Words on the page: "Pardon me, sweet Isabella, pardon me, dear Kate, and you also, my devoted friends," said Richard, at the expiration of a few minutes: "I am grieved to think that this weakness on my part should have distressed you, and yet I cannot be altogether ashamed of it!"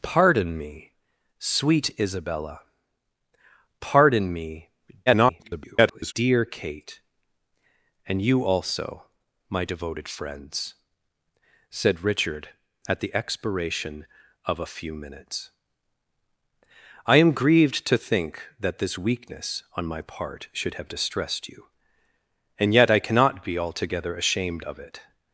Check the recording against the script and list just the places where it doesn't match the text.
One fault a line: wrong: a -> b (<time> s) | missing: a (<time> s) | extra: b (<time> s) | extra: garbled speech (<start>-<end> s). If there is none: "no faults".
extra: garbled speech (5.1-6.1 s)